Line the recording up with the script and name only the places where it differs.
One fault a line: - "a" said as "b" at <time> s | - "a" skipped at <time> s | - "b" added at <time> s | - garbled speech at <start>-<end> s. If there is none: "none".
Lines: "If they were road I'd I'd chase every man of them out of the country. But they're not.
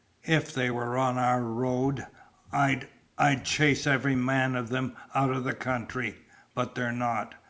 - "on our" added at 1.0 s